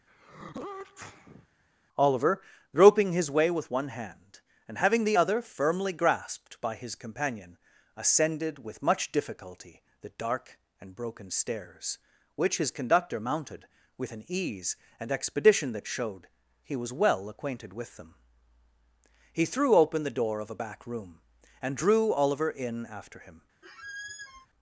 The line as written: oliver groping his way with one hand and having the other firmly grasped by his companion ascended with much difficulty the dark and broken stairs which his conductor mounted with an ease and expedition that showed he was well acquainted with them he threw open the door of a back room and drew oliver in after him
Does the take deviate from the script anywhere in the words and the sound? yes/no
yes